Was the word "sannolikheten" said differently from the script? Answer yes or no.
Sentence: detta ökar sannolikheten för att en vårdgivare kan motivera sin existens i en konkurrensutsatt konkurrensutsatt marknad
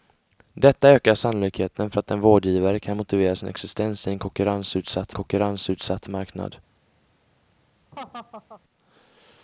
no